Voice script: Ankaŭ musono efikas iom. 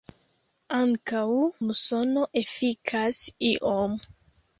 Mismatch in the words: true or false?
false